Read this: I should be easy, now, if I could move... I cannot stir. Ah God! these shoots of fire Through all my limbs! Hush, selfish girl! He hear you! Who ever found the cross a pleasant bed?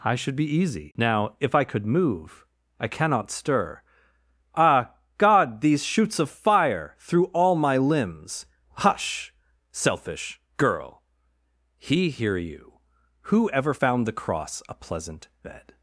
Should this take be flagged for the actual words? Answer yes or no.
no